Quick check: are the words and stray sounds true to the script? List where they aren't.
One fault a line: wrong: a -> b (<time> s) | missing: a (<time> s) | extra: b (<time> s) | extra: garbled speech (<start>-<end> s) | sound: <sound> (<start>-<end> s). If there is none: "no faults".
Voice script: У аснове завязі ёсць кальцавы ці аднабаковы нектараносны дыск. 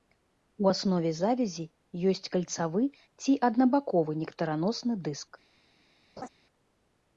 sound: laugh (6.2-6.3 s)